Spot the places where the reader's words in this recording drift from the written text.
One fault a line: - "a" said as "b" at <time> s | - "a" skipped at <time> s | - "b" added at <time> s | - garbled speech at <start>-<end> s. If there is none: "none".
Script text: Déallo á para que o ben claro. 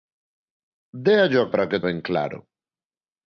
none